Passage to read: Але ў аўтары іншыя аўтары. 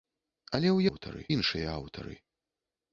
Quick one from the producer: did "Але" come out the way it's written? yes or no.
yes